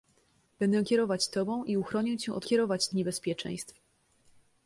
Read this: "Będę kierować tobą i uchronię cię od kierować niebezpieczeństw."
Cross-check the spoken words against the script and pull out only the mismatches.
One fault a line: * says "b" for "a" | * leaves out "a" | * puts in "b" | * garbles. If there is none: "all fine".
all fine